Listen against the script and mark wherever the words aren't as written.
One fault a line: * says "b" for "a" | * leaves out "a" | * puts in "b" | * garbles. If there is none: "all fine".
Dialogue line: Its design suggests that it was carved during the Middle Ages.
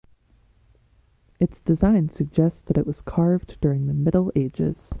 all fine